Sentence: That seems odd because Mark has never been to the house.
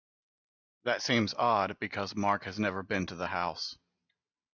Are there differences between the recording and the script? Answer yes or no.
no